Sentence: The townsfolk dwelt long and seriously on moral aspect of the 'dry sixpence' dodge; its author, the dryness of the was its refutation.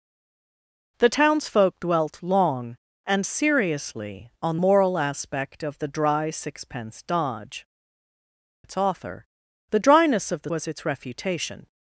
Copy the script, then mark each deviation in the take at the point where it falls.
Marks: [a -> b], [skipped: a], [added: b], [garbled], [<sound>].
The townsfolk dwelt long and seriously on moral aspect of the 'dry sixpence' dodge; its author, the dryness of the was its refutation.